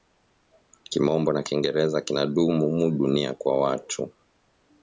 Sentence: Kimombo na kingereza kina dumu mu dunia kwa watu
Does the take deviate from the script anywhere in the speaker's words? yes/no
no